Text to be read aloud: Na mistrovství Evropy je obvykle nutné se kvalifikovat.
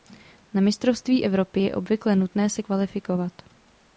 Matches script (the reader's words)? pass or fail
pass